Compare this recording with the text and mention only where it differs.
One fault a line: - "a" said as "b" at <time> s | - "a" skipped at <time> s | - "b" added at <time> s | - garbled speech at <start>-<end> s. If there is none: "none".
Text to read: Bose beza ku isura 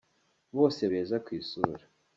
none